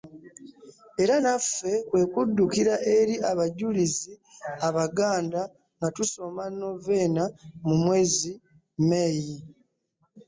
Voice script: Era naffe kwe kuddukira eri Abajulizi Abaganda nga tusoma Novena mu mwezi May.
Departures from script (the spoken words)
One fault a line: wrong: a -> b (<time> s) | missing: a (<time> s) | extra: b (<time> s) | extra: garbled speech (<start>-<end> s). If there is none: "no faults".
no faults